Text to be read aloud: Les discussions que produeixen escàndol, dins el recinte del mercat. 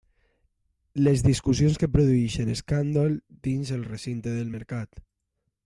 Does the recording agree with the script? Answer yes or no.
yes